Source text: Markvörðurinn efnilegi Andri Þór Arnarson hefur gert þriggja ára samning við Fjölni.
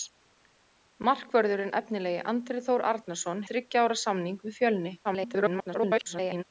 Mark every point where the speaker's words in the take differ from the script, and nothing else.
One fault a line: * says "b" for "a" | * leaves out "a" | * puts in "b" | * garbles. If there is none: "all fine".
* leaves out "hefur gert"
* garbles